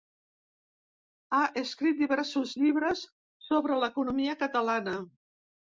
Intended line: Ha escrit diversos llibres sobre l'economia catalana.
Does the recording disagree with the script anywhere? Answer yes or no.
no